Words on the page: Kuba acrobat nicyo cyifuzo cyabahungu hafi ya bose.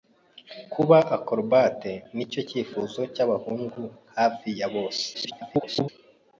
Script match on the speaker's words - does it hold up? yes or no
no